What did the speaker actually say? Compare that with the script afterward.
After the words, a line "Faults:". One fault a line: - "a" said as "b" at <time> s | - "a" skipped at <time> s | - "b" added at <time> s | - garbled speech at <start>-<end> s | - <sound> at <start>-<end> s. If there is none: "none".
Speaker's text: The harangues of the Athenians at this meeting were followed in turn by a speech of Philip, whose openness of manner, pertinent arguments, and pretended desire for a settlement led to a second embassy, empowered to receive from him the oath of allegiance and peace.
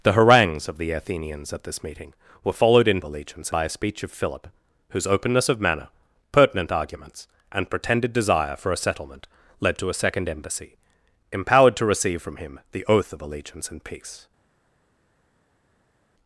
The harangues of the Athenians at this meeting were followed in allegiance by a speech of Philip, whose openness of manner, pertinent arguments, and pretended desire for a settlement led to a second embassy, empowered to receive from him the oath of allegiance and peace.
Faults:
- "turn" said as "allegiance" at 3.0 s